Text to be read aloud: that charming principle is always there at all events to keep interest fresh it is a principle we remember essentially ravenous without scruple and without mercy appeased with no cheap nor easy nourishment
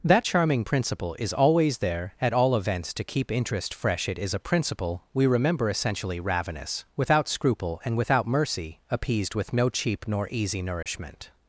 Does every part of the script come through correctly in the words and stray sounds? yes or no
no